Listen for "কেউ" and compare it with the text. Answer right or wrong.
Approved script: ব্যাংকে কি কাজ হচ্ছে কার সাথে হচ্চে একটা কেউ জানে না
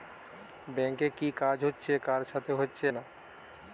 wrong